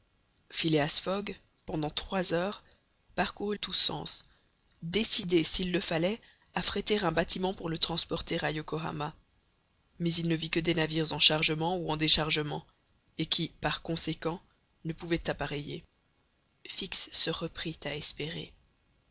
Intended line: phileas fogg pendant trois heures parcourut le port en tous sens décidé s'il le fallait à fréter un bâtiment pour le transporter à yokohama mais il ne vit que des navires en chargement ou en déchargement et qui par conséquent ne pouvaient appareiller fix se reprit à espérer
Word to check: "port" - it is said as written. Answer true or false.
false